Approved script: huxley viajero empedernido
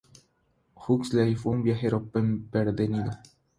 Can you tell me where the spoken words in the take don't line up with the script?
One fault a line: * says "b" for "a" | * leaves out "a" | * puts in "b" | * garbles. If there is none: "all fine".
* puts in "fue un"